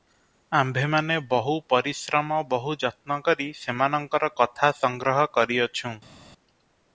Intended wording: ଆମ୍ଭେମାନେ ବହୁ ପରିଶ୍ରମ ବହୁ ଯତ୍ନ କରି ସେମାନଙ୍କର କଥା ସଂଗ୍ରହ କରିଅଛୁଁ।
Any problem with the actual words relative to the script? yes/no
no